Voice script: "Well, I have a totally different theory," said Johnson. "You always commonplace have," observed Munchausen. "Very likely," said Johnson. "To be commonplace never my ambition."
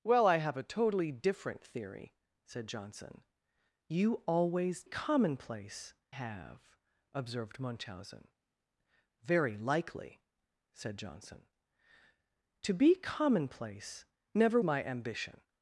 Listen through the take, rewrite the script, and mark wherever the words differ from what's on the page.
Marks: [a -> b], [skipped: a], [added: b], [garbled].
"Well, I have a totally different theory," said Johnson. "You always commonplace have," observed Munchausen. "Very likely," said Johnson. "To be commonplace never my ambition."